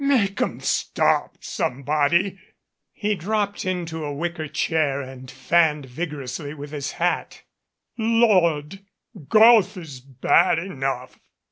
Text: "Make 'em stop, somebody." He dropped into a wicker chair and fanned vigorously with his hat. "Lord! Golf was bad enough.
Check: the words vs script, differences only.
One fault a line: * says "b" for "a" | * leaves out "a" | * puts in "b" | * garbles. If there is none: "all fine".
* says "is" for "was"